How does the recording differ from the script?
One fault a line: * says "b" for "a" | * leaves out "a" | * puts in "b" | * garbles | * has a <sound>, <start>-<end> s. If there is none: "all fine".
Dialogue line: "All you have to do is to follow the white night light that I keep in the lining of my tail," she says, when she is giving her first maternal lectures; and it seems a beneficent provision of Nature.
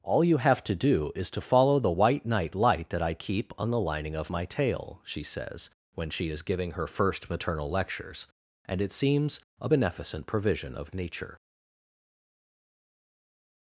* says "on" for "in"